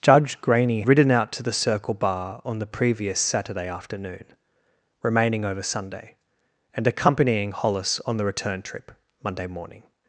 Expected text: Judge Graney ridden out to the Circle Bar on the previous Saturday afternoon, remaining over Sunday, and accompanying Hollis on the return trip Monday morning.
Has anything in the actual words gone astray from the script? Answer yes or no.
no